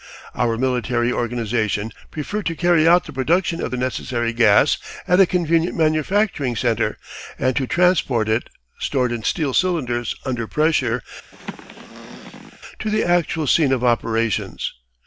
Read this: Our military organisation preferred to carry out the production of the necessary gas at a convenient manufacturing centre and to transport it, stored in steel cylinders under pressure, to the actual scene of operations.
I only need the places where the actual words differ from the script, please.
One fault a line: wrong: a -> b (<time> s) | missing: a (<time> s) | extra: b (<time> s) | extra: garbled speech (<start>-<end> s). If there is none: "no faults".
no faults